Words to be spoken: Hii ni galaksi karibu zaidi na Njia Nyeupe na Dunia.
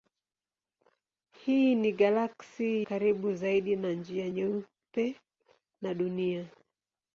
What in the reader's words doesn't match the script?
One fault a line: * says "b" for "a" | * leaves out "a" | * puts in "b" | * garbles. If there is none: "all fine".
all fine